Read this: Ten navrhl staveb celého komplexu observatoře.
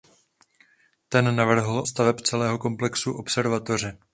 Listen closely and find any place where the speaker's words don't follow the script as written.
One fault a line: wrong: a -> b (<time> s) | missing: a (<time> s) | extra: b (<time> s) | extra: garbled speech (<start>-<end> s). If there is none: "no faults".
no faults